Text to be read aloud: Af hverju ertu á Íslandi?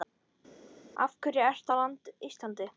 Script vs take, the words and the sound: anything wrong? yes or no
no